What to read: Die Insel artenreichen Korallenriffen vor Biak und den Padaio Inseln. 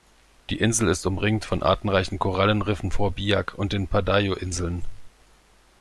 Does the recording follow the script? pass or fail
fail